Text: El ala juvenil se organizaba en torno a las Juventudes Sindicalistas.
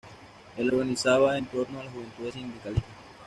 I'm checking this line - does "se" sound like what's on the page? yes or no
no